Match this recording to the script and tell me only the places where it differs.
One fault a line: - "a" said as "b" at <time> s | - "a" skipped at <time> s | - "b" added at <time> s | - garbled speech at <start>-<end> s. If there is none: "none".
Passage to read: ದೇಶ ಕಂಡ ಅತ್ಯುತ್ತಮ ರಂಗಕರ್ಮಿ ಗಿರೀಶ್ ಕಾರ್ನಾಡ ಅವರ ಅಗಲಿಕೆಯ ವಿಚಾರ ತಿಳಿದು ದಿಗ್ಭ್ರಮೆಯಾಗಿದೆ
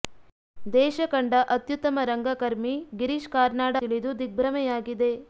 - "ಅವರ ಅಗಲಿಕೆಯ ವಿಚಾರ" skipped at 3.7 s